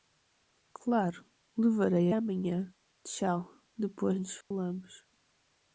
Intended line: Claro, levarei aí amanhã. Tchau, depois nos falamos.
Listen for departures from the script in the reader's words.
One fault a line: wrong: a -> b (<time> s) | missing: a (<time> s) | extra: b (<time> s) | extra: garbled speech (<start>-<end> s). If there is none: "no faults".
missing: aí (2.1 s)